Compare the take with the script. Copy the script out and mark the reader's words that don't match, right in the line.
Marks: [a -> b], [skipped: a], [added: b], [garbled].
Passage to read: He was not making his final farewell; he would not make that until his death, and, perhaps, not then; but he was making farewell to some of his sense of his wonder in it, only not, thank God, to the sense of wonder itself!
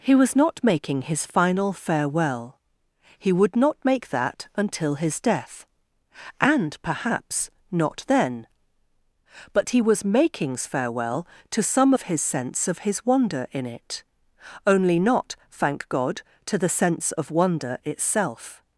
He was not making his final farewell; he would not make that until his death, and, perhaps, not then; but he was [making -> makings] farewell to some of his sense of his wonder in it, only not, thank God, to the sense of wonder itself!